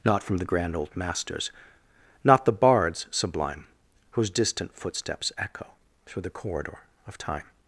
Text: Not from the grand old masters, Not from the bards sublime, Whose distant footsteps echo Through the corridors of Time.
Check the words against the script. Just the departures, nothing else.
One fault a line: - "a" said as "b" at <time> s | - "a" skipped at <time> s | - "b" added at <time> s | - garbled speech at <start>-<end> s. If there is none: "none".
- "from" skipped at 2.5 s
- "corridors" said as "corridor" at 6.3 s